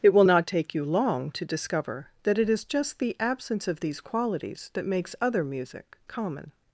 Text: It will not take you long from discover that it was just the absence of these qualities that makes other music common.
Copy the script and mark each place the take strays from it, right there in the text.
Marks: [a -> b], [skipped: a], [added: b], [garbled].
It will not take you long [from -> to] discover that it [was -> is] just the absence of these qualities that makes other music common.